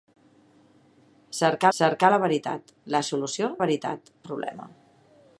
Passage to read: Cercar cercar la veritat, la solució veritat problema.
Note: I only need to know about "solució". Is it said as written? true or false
true